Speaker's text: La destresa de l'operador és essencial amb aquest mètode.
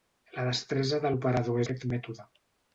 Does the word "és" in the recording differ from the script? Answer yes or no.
yes